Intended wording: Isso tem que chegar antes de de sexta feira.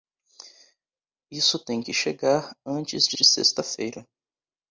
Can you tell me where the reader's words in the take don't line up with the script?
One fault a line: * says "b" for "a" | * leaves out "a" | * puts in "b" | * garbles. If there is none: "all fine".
all fine